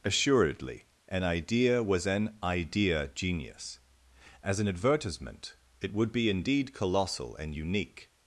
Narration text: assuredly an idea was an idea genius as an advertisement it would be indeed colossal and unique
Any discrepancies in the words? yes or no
no